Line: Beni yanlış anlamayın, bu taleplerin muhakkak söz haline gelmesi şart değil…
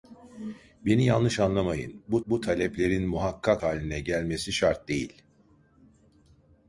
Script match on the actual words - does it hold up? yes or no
no